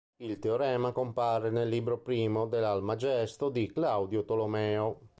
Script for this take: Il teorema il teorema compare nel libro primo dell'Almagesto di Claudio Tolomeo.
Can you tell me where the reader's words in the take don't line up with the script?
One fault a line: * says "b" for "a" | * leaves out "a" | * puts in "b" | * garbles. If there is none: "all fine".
* leaves out "il teorema"